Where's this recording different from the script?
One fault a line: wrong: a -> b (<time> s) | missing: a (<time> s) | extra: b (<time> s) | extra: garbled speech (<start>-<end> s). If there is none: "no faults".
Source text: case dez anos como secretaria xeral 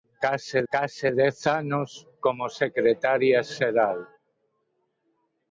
extra: case (0.7 s)